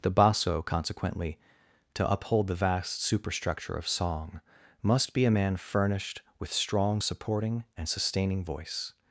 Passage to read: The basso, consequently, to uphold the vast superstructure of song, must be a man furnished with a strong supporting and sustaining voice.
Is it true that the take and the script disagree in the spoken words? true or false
true